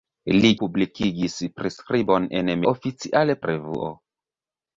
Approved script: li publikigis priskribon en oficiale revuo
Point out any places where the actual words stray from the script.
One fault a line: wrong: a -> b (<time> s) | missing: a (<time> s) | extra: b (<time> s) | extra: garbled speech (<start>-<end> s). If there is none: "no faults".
no faults